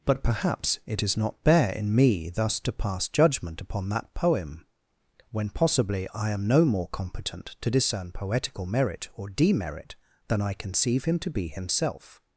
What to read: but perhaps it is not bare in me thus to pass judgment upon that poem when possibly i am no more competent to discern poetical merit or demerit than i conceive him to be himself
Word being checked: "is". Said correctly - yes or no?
yes